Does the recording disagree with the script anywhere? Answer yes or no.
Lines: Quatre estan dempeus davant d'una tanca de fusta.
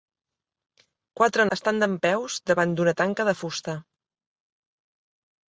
no